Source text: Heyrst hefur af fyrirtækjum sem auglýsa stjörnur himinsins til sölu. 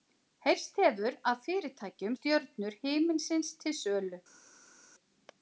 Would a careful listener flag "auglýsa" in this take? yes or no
yes